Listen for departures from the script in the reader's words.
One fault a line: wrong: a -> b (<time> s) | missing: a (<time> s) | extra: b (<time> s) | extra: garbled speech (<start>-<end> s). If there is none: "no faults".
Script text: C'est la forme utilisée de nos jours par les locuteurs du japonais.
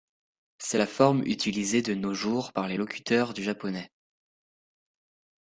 no faults